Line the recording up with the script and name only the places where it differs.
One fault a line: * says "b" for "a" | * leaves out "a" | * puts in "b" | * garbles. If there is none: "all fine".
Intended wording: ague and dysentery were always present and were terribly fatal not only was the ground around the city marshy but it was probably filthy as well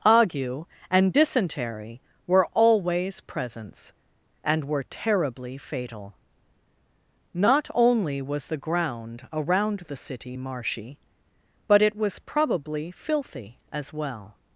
* says "presents" for "present"